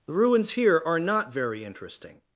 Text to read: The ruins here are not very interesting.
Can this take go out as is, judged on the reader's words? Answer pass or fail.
pass